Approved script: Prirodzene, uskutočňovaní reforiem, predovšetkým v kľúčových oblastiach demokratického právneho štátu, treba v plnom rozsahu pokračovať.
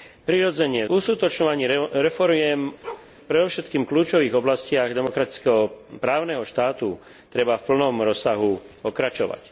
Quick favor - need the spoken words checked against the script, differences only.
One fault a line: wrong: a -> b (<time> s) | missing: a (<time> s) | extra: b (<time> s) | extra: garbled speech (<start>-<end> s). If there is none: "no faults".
no faults